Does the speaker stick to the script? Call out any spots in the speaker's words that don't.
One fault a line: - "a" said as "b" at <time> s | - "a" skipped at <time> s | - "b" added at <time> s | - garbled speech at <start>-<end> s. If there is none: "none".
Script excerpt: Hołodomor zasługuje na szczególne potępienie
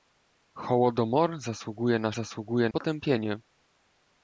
- "szczególne" said as "zasługuje" at 2.1 s